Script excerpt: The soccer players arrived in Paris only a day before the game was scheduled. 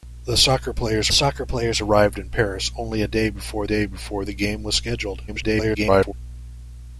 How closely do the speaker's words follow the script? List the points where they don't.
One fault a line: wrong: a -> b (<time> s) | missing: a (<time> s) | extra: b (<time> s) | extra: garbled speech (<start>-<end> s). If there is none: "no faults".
extra: soccer players (1.1 s)
extra: day before (3.6 s)
extra: garbled speech (5.3-6.1 s)